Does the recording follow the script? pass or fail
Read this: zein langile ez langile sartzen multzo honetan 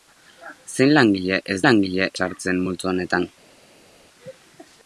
pass